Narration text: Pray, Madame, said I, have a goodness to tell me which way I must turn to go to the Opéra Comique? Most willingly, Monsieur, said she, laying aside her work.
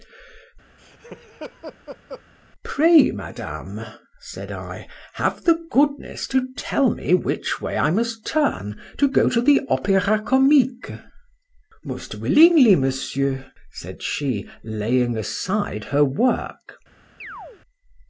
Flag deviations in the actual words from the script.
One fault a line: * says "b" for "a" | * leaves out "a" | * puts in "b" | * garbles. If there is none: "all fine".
* says "the" for "a"